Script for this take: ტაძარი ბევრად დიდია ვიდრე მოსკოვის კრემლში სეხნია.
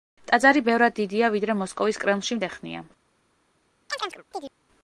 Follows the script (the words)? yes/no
yes